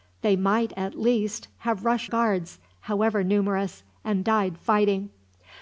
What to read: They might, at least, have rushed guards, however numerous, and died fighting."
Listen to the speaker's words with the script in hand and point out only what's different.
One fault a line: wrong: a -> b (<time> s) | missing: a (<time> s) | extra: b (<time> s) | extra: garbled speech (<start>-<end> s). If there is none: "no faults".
no faults